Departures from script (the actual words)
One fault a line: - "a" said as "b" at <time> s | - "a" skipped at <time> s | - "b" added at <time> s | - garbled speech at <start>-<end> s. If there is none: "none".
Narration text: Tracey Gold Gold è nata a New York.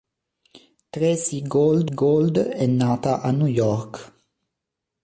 none